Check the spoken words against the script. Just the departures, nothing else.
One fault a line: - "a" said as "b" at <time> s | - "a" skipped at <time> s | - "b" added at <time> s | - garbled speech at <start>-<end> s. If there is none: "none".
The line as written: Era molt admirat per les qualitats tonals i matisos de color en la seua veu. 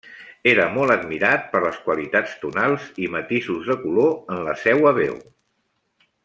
none